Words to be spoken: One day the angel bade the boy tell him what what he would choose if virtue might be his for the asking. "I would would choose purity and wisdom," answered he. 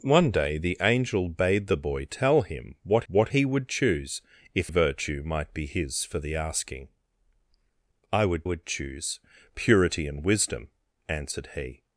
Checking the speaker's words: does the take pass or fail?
pass